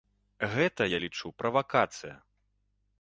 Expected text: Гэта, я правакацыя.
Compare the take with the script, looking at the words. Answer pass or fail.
fail